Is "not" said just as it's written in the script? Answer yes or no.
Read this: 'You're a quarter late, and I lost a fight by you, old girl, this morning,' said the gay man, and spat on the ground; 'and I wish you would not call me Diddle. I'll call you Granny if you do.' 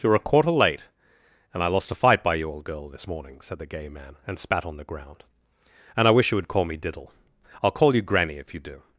no